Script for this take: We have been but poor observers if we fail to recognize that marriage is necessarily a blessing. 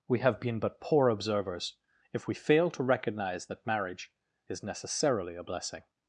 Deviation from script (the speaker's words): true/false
false